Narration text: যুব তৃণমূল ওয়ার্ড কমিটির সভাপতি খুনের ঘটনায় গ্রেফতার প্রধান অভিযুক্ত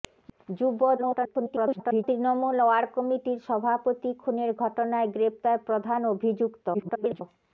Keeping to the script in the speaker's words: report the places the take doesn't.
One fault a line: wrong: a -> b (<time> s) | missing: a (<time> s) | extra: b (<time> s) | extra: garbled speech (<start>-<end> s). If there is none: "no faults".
extra: garbled speech (1.0-2.0 s)
extra: garbled speech (6.7-7.2 s)